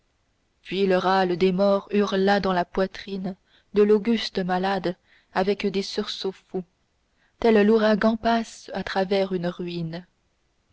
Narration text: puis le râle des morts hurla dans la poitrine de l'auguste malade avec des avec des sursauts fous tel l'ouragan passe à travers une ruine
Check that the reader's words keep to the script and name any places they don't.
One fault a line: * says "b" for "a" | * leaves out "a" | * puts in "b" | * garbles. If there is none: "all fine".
* leaves out "avec des"